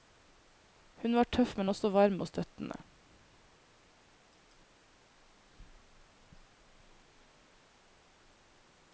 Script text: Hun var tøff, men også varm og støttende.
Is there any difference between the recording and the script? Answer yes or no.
no